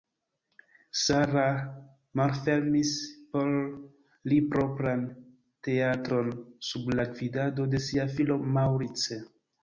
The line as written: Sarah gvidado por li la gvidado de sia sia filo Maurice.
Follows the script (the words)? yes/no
no